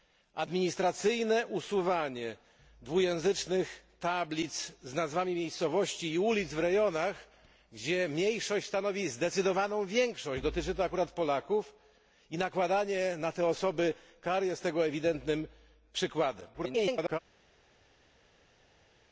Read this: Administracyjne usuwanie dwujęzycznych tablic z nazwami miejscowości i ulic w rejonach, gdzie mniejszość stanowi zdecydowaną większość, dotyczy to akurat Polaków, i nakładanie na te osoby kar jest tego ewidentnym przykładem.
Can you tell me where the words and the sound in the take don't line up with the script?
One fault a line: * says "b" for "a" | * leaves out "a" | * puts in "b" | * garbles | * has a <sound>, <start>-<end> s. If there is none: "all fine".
* garbles